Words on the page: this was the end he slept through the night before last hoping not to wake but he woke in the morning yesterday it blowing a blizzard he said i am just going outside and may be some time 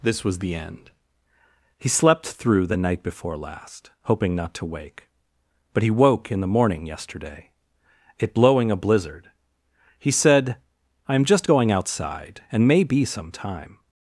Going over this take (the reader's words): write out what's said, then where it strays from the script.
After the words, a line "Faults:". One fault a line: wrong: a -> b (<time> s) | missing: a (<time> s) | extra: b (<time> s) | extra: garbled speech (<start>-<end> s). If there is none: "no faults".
this was the end he slept through the night before last hoping not to wake but he woke in the morning yesterday it blowing a blizzard he said i am just going outside and may be some time
Faults:
no faults